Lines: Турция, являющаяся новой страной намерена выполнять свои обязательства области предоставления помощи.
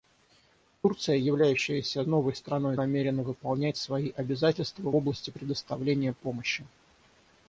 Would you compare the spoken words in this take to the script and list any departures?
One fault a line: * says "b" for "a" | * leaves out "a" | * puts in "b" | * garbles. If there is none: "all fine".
all fine